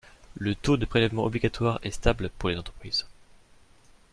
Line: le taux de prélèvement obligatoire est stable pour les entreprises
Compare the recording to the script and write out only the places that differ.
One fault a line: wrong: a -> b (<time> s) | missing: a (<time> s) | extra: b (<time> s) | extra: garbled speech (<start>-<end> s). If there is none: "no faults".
no faults